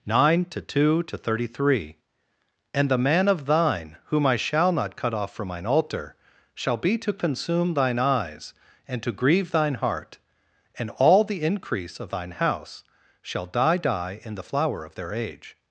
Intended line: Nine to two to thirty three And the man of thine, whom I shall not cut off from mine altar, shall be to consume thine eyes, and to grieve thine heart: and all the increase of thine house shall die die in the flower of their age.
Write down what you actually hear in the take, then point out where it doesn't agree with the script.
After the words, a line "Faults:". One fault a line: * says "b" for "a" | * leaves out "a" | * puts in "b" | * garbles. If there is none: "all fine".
Nine to two to thirty three And the man of thine, whom I shall not cut off from mine altar, shall be to consume thine eyes, and to grieve thine heart: and all the increase of thine house shall die die in the flower of their age.
Faults:
all fine